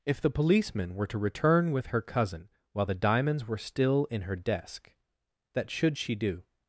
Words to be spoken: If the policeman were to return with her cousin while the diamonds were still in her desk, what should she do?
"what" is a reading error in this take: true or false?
true